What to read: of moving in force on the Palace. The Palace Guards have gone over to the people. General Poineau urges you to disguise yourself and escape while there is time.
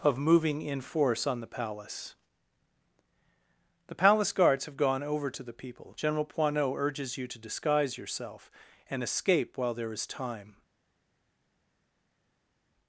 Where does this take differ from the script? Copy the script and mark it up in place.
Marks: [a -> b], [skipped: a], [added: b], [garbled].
of moving in force on the Palace. The Palace Guards have gone over to the people. General Poineau urges you to disguise yourself and escape while there is time.